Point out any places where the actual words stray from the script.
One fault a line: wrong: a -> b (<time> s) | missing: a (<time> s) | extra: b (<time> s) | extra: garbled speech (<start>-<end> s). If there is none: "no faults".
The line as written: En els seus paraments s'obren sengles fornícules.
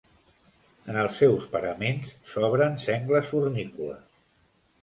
no faults